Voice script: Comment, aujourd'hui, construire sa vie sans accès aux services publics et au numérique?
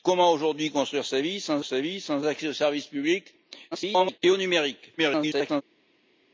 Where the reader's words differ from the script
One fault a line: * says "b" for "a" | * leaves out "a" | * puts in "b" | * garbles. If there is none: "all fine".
* puts in "sa vie sans"
* garbles
* garbles